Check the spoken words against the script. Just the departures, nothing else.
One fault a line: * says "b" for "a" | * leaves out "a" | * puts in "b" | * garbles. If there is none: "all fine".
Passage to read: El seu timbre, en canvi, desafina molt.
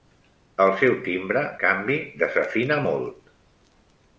* leaves out "en"